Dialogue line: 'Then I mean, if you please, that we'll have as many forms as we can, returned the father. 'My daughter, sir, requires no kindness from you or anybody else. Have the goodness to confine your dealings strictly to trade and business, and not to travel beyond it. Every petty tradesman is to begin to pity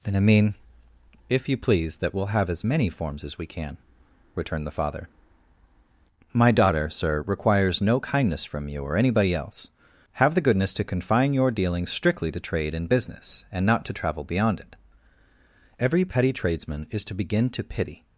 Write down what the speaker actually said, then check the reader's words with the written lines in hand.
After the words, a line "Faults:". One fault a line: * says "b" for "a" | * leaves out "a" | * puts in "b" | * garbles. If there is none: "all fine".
'Then I mean, if you please, that we'll have as many forms as we can, returned the father. 'My daughter, sir, requires no kindness from you or anybody else. Have the goodness to confine your dealings strictly to trade and business, and not to travel beyond it. Every petty tradesman is to begin to pity
Faults:
all fine